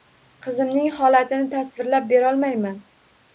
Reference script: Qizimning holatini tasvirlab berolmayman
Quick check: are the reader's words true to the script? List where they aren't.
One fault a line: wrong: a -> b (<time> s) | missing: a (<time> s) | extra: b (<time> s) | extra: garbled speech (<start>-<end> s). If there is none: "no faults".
no faults